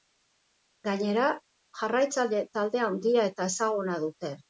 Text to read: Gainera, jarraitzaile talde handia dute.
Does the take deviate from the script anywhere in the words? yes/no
yes